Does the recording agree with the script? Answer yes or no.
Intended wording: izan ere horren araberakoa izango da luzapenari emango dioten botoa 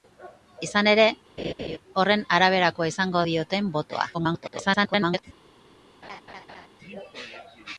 no